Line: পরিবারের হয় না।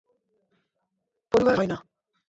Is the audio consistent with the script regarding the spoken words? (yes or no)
yes